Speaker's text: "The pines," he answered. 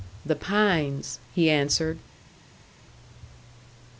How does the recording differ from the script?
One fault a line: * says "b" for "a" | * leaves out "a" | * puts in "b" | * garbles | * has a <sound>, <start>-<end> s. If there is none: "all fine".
all fine